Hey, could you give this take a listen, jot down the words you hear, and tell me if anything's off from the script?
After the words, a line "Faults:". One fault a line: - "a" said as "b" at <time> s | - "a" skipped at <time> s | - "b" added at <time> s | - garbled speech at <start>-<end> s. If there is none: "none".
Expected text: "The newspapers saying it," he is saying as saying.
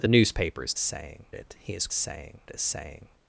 "The newspapers saying it," he is saying as saying.
Faults:
none